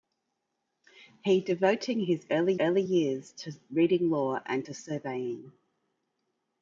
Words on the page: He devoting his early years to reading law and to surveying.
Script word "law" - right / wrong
right